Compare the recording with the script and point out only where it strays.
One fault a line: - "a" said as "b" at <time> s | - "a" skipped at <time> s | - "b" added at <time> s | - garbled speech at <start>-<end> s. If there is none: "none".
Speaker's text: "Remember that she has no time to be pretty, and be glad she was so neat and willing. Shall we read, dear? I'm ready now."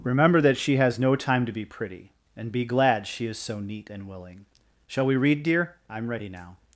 - "was" said as "is" at 3.3 s